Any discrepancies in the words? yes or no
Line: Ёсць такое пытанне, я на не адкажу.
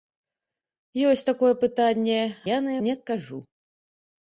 no